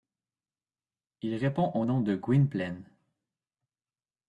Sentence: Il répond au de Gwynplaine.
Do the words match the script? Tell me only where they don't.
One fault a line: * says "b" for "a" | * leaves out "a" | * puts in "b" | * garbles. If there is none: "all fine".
* puts in "nom"